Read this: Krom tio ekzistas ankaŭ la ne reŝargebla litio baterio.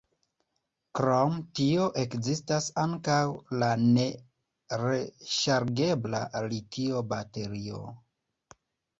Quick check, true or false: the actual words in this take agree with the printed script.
true